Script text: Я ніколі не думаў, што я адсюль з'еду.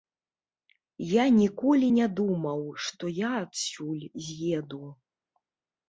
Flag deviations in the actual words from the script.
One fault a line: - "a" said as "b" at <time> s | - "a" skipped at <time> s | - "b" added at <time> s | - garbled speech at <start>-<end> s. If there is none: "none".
none